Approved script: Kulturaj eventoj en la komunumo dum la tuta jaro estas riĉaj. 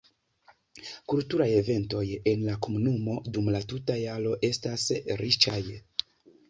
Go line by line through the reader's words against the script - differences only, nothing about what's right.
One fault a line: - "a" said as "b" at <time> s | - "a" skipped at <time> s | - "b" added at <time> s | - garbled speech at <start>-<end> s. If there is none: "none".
none